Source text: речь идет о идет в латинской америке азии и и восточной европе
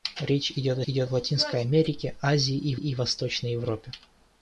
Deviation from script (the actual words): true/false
false